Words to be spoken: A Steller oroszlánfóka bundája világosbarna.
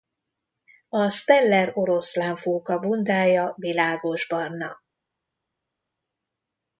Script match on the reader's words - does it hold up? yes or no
yes